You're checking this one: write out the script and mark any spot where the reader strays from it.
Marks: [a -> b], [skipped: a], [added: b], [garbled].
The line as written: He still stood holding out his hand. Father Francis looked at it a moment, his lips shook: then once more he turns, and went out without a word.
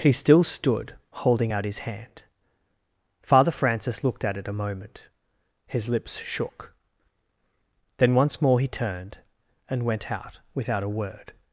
He still stood holding out his hand. Father Francis looked at it a moment, his lips shook: then once more he [turns, -> turned] and went out without a word.